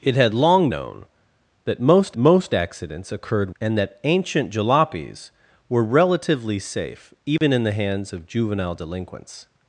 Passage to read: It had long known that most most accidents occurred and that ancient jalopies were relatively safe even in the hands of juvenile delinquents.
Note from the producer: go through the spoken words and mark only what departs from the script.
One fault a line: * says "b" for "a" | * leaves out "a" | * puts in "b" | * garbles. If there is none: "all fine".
all fine